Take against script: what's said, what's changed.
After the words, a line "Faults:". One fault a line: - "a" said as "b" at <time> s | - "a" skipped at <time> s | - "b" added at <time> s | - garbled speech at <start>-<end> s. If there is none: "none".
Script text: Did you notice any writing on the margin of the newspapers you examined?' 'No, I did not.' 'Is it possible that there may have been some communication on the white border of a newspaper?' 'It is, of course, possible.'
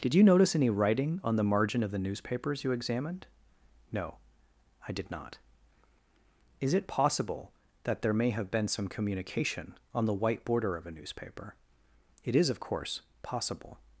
Did you notice any writing on the margin of the newspapers you examined?' 'No, I did not.' 'Is it possible that there may have been some communication on the white border of a newspaper?' 'It is, of course, possible.'
Faults:
none